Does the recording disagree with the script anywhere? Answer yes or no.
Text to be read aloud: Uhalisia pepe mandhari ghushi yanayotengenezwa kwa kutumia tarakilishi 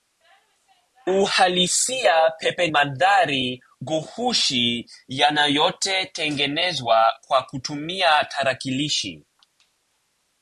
no